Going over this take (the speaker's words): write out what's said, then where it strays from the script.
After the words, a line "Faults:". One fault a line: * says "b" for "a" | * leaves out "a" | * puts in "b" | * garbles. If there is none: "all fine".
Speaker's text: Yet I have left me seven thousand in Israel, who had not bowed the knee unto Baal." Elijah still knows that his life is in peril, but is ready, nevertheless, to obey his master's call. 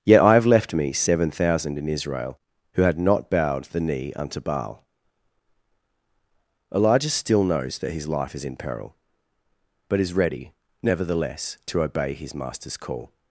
Yet I have left me seven thousand in Israel, who had not bowed the knee unto Baal." Elijah still knows that his life is in peril, but is ready, nevertheless, to obey his master's call.
Faults:
all fine